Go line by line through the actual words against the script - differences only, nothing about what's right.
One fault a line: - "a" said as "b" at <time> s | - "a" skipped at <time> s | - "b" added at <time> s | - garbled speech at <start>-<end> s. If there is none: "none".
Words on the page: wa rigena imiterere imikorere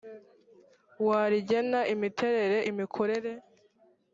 none